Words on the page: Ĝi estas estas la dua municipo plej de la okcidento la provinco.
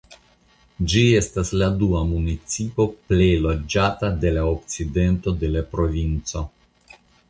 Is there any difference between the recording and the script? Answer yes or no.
yes